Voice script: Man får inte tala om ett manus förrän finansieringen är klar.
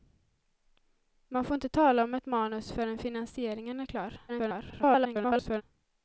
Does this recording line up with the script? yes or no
no